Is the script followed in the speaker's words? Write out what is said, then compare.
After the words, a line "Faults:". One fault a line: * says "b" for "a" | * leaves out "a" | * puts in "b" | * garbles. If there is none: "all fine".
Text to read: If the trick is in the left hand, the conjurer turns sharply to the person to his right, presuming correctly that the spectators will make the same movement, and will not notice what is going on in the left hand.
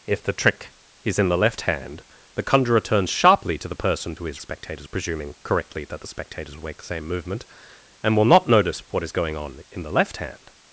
If the trick is in the left hand, the conjurer turns sharply to the person to his spectators, presuming correctly that the spectators will make the same movement, and will not notice what is going on in the left hand.
Faults:
* says "spectators" for "right"